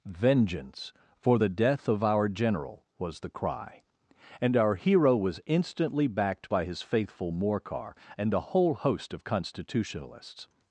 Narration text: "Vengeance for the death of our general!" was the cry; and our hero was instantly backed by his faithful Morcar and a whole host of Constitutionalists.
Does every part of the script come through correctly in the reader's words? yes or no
yes